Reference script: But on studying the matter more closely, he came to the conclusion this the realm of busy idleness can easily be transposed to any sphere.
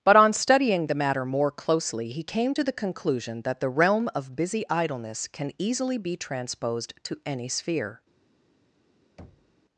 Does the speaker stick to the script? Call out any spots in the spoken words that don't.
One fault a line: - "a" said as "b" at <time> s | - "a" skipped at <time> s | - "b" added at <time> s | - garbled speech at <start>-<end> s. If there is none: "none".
- "this" said as "that" at 3.4 s